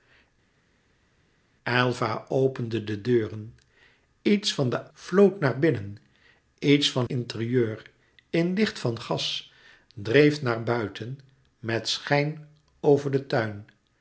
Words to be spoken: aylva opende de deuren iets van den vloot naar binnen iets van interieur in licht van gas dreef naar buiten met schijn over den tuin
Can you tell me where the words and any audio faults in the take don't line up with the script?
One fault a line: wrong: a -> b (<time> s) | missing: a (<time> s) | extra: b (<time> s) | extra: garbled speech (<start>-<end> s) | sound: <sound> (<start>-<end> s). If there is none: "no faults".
no faults